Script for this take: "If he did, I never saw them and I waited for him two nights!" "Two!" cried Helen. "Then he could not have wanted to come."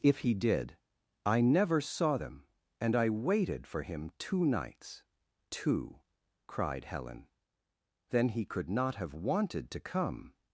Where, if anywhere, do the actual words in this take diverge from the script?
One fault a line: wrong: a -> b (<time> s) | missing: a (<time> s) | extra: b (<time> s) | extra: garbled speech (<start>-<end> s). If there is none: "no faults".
no faults